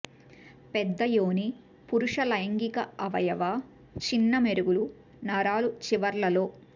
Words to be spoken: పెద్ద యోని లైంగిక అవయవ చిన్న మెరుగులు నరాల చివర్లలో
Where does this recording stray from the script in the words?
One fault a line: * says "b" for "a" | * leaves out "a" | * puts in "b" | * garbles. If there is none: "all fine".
* puts in "పురుష"